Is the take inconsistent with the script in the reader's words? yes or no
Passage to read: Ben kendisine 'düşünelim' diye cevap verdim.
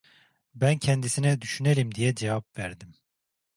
no